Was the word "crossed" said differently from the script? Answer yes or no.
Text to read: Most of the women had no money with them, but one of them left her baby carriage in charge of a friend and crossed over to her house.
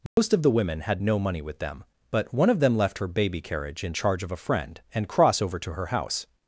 yes